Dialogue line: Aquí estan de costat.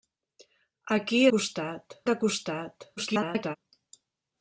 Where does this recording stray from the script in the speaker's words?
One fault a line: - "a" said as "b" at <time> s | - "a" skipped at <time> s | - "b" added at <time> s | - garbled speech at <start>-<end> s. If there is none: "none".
- "estan" said as "costat" at 1.3 s
- garbled speech at 3.0-3.6 s